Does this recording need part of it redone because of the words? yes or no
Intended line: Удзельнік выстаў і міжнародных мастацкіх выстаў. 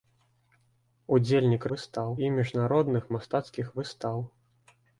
no